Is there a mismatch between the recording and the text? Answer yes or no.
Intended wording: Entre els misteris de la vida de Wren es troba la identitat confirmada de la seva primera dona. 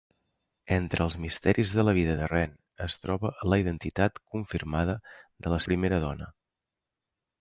yes